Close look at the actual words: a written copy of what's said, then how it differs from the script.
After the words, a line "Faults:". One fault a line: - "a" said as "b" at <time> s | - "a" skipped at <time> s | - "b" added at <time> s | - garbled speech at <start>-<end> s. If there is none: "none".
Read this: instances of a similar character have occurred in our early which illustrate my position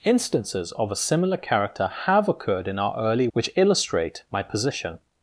instances of a similar character have occurred in our early which illustrate my position
Faults:
none